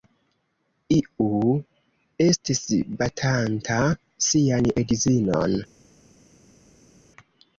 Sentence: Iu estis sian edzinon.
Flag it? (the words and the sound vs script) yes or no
yes